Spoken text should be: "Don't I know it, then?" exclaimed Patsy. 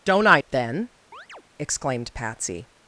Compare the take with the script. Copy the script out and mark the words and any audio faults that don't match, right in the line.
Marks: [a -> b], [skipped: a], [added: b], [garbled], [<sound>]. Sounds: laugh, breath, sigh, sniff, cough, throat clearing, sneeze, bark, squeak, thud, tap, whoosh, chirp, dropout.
"Don't I [skipped: know] it, then?" [chirp] exclaimed Patsy.